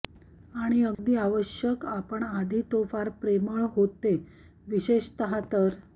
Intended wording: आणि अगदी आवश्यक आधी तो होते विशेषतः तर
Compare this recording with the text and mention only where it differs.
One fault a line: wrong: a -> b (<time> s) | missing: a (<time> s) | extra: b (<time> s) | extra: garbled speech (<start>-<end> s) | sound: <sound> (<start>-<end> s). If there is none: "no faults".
sound: dropout (0.9-1.0 s)
extra: आपण (1.9 s)
extra: फार प्रेमळ (2.9 s)